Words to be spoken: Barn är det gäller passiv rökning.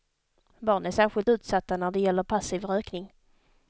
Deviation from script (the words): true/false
true